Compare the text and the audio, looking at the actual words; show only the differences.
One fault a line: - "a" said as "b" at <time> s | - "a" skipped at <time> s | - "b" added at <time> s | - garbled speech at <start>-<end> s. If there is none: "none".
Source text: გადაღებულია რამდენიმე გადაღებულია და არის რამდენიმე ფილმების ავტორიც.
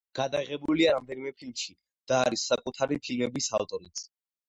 - "გადაღებულია" said as "ფილმში" at 1.4 s
- "რამდენიმე" said as "საკუთარი" at 2.5 s